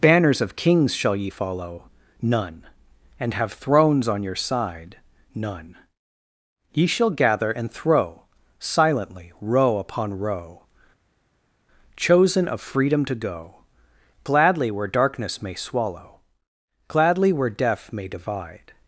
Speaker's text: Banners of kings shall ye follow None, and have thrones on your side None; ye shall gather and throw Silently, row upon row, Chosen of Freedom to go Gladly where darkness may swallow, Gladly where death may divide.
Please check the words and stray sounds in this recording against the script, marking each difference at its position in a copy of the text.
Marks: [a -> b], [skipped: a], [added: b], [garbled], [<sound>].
Banners of kings shall ye follow None, and have thrones on your side None; ye shall gather and throw Silently, row upon row, Chosen of Freedom to go Gladly where darkness may swallow, Gladly where death may divide.